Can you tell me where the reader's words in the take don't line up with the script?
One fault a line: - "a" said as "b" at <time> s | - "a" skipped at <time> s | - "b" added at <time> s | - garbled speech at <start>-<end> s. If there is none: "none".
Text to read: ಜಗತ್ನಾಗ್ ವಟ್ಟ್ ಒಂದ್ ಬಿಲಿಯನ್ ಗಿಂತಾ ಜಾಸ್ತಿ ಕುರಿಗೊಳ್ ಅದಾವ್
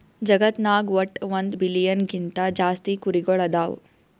none